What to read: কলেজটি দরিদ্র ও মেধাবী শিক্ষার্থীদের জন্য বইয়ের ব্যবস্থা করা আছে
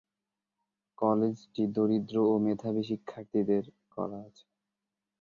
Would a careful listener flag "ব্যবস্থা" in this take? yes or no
yes